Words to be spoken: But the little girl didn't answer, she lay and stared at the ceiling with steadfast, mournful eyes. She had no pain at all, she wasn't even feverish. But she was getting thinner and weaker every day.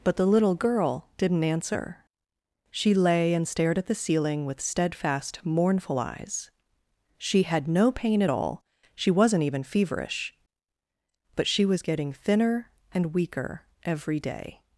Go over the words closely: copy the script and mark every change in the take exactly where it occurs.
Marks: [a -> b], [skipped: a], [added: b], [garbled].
But the little girl didn't answer, she lay and stared at the ceiling with steadfast, mournful eyes. She had no pain at all, she wasn't even feverish. But she was getting thinner and weaker every day.